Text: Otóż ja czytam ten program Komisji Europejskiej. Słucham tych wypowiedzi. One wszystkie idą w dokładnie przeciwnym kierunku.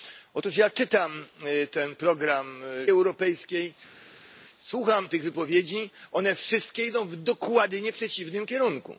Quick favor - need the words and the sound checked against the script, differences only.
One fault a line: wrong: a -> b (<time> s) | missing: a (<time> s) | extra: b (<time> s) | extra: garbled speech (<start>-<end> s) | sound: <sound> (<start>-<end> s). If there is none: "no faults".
missing: Komisji (2.6 s)